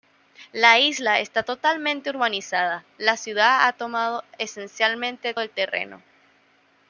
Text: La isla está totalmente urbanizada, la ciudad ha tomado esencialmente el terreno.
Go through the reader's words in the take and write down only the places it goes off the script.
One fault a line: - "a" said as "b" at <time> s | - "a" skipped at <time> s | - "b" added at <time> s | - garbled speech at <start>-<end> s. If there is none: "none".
none